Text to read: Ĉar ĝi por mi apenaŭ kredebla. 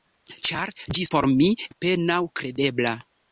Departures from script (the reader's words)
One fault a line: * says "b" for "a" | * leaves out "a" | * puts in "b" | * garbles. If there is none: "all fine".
all fine